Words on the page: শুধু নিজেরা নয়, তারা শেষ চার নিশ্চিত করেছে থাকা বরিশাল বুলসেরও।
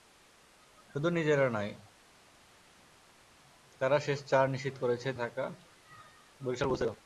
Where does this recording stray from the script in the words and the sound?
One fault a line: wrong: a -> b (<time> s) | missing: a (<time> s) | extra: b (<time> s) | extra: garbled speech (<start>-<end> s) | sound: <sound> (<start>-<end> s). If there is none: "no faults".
no faults